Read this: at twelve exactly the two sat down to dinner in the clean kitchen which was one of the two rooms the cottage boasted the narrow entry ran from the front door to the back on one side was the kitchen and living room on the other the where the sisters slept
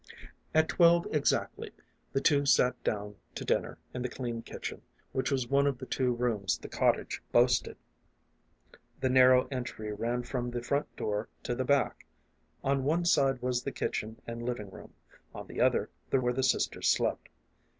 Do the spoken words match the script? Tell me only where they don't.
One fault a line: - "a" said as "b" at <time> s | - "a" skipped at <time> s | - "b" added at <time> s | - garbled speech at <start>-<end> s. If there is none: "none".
none